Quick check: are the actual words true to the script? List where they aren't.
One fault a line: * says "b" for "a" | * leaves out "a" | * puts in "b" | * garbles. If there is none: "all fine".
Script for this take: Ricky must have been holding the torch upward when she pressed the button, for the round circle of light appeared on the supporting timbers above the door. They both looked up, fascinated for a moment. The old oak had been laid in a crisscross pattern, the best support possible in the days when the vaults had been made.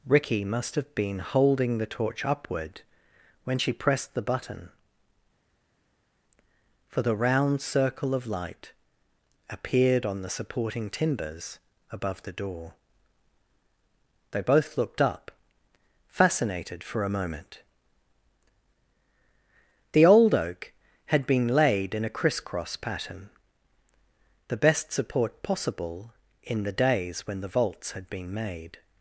all fine